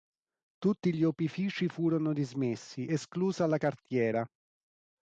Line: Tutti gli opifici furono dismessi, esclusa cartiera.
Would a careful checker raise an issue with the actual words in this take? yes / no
yes